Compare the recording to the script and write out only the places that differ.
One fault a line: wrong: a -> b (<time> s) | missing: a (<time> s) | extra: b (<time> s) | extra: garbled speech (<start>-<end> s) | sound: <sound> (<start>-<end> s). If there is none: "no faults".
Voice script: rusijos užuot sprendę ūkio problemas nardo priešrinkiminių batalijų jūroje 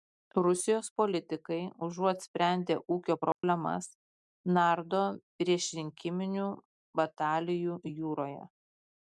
extra: politikai (1.0 s)
sound: dropout (3.3-3.4 s)